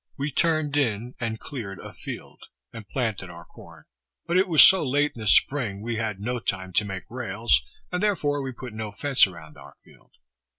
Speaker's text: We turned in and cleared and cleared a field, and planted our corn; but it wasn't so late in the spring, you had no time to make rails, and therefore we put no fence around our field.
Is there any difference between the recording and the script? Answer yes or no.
yes